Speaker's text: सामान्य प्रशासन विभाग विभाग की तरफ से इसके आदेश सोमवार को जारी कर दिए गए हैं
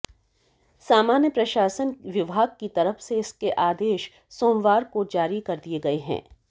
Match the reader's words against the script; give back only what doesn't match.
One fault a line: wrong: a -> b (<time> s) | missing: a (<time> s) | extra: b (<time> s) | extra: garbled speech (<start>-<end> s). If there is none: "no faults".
missing: विभाग (2.5 s)